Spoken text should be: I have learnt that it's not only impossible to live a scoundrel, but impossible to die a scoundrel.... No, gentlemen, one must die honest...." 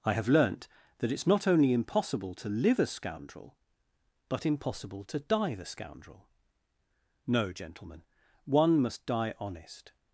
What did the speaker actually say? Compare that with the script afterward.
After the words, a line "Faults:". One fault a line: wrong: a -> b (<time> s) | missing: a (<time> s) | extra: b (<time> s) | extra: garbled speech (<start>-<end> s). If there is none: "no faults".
I have learnt that it's not only impossible to live a scoundrel, but impossible to die the scoundrel.... No, gentlemen, one must die honest...."
Faults:
wrong: a -> the (5.5 s)